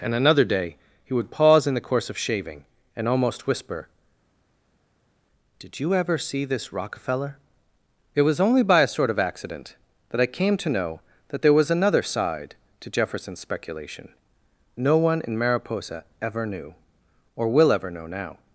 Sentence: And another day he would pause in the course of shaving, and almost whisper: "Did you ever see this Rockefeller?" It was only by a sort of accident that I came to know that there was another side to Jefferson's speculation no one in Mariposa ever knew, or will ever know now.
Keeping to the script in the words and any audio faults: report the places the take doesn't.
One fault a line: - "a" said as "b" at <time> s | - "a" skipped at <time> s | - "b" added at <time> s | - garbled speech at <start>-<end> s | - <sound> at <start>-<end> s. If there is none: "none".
none